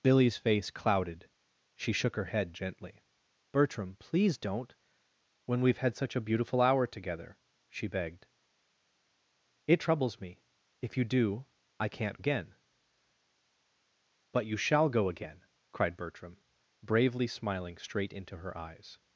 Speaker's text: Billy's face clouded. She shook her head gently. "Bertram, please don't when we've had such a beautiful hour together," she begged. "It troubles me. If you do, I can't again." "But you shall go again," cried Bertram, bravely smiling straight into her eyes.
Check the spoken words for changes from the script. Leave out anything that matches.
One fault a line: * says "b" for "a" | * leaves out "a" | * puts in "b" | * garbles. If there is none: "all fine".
all fine